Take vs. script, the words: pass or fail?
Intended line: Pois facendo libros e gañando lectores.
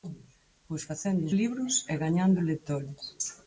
pass